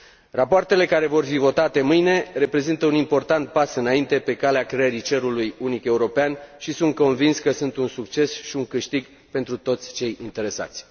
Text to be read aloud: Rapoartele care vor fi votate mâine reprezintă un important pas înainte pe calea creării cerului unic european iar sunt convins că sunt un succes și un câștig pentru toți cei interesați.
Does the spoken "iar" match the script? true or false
false